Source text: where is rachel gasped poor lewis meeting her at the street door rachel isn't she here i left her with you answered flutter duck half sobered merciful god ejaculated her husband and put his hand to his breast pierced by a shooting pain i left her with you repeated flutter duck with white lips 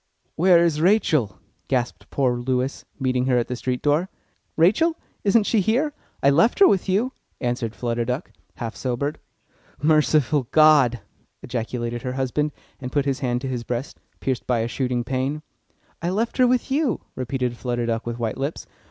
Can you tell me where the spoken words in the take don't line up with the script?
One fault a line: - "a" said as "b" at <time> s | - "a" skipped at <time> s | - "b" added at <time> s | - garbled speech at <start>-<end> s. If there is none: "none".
none